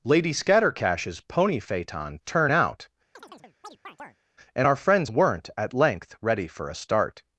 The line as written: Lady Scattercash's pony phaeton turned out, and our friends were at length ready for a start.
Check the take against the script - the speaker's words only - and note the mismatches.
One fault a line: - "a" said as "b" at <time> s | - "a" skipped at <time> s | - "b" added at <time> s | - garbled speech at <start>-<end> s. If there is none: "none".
- "turned" said as "turn" at 2.2 s
- "were" said as "weren't" at 5.1 s